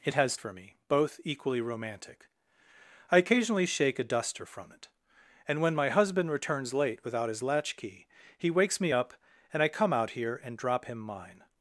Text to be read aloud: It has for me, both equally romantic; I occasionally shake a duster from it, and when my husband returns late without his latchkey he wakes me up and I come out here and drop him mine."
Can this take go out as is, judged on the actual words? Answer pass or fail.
pass